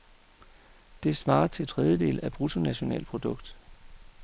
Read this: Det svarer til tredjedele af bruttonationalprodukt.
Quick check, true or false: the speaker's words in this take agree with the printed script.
true